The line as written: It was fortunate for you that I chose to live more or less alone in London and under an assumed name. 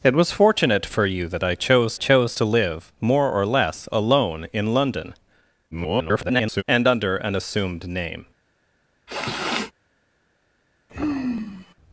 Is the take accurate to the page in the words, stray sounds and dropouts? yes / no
no